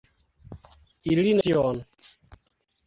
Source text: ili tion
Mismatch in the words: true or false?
false